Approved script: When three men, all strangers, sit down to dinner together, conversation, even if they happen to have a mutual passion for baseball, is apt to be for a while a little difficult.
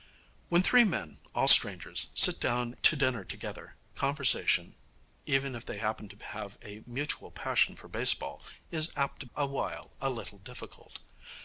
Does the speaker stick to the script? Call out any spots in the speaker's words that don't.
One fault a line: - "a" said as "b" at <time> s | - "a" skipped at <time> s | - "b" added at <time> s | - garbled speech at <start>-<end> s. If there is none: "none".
- "be for" skipped at 9.3 s